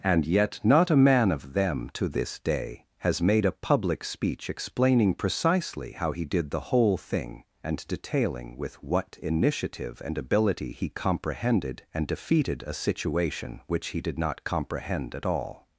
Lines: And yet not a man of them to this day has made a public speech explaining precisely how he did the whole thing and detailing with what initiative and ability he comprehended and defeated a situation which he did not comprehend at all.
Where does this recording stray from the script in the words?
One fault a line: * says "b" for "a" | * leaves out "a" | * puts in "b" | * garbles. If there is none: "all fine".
all fine